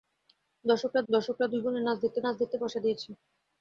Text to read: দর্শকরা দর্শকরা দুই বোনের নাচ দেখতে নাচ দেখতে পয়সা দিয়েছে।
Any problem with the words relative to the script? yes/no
no